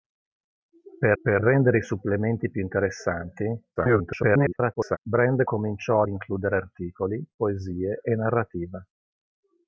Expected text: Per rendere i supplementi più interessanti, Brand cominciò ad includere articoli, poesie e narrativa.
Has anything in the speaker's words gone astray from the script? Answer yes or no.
yes